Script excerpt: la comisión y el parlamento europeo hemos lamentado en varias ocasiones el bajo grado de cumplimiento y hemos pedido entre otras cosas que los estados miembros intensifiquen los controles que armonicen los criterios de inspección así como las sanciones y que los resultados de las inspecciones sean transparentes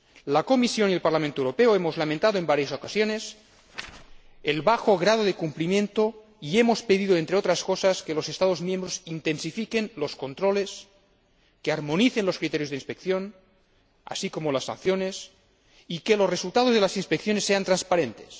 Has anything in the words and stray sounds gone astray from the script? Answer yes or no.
no